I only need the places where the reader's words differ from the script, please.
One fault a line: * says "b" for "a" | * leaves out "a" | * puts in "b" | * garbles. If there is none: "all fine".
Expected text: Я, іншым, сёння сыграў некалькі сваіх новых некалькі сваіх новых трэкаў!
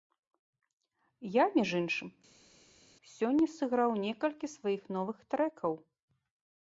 * puts in "між"
* leaves out "некалькі сваіх новых"